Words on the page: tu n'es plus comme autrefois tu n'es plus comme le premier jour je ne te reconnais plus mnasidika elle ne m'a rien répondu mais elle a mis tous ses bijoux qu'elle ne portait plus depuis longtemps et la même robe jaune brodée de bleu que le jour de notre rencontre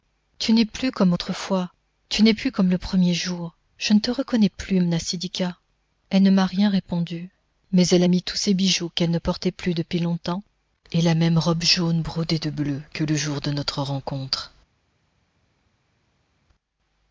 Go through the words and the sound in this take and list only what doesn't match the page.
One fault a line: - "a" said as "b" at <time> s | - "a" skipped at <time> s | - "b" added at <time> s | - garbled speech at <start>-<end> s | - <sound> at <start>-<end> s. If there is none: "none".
none